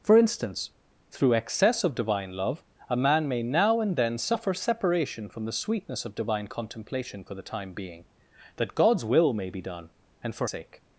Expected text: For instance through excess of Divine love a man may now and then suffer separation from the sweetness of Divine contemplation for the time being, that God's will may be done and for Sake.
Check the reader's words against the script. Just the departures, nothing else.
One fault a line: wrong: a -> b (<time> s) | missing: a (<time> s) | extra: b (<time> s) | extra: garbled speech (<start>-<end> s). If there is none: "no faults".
no faults